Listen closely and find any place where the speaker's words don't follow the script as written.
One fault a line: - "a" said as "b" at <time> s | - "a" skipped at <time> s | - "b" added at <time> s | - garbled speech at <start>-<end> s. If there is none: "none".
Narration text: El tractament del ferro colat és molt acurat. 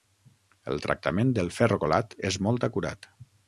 none